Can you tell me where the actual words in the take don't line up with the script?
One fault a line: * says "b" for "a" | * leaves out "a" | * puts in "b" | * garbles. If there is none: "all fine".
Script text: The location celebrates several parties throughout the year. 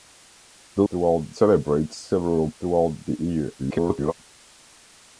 * says "throughout" for "location"
* leaves out "parties"
* garbles